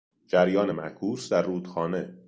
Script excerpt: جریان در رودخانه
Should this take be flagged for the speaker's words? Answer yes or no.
yes